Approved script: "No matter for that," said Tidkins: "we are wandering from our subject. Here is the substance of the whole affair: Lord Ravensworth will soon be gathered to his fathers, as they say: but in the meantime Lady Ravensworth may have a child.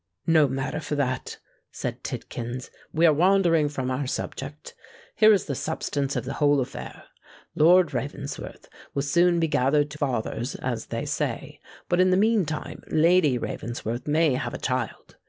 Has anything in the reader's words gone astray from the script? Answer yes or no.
yes